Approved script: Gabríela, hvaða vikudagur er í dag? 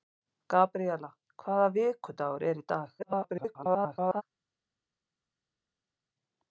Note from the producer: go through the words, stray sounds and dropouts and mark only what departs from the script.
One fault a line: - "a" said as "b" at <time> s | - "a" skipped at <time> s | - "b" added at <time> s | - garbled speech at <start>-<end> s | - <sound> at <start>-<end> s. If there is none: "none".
- garbled speech at 3.0-4.2 s